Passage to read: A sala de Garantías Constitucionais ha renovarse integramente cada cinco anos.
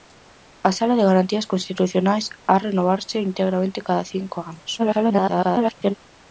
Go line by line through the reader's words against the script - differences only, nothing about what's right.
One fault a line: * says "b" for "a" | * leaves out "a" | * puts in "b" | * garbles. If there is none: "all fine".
* garbles